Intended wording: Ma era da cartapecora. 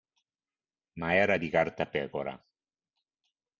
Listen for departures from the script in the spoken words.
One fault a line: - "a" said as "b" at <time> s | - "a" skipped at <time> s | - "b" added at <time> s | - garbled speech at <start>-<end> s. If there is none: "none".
- "da" said as "di" at 1.3 s